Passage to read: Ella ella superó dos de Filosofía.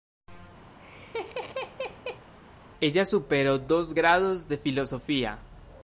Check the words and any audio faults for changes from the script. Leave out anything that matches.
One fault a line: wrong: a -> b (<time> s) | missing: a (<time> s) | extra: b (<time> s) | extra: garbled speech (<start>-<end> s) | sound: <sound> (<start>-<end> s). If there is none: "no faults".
sound: laugh (0.7-2.3 s)
missing: ella (3.0 s)
extra: grados (3.9 s)